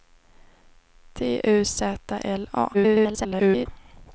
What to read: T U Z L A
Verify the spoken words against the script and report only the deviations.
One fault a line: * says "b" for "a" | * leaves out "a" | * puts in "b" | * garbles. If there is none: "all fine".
* garbles